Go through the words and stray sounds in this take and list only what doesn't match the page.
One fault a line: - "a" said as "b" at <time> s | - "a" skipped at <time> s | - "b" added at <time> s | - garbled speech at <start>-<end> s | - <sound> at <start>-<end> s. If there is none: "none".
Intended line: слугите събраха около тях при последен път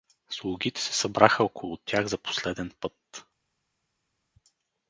- "се" added at 0.8 s
- "при" said as "за" at 2.0 s